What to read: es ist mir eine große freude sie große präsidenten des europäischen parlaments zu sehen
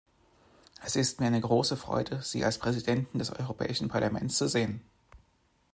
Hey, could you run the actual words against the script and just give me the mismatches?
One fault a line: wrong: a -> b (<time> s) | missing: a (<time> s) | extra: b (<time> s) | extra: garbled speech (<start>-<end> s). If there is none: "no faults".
wrong: große -> als (2.5 s)